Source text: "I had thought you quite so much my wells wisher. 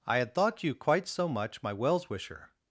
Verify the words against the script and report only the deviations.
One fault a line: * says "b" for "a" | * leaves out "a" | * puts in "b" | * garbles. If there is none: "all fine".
all fine